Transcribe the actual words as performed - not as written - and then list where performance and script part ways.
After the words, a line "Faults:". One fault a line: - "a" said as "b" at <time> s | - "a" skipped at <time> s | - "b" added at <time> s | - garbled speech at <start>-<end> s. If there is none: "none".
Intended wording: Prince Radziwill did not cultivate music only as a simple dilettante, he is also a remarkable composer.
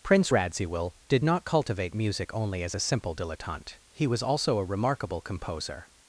Prince Radziwill did not cultivate music only as a simple dilettante, he was also a remarkable composer.
Faults:
- "is" said as "was" at 4.1 s